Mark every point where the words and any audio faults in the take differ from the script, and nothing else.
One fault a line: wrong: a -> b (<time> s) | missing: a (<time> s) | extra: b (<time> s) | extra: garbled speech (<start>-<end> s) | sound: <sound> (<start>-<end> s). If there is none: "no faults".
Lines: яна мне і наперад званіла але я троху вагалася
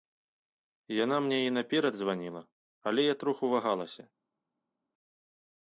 no faults